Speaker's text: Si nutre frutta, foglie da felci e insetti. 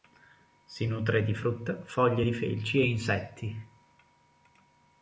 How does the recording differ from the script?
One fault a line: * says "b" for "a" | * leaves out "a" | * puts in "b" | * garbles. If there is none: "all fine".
* puts in "di"
* says "di" for "da"